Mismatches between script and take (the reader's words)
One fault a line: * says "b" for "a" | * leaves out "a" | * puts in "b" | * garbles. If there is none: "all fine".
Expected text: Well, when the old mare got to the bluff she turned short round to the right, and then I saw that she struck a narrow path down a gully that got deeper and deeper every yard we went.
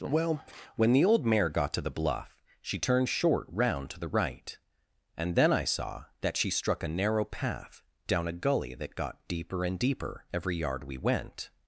all fine